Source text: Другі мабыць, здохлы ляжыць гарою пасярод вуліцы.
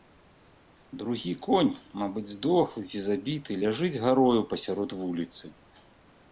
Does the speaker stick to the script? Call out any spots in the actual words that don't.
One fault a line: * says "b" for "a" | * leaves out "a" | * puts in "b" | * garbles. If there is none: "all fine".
* puts in "конь"
* puts in "ці забіты"